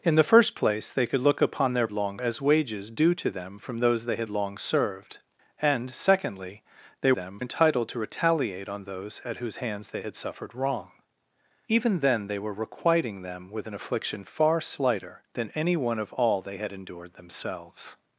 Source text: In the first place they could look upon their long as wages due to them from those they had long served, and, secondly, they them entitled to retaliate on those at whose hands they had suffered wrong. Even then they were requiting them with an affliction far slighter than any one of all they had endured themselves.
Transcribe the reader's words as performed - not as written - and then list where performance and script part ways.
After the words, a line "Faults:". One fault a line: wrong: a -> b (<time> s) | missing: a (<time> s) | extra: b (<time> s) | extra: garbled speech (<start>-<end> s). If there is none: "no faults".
In the first place they could look upon their long as wages due to them from those they had long served, and, secondly, they them entitled to retaliate on those at whose hands they had suffered wrong. Even then they were requiting them with an affliction far slighter than any one of all they had endured themselves.
Faults:
no faults